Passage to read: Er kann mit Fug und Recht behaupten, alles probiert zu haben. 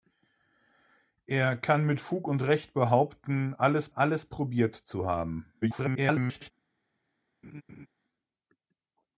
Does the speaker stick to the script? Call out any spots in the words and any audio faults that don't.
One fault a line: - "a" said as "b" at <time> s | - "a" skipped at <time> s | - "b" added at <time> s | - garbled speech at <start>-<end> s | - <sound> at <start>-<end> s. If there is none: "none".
- "alles" added at 3.9 s
- garbled speech at 5.6-6.5 s
- laugh at 7.4-7.9 s